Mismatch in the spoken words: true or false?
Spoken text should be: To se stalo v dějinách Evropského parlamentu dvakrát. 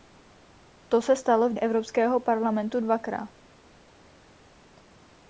true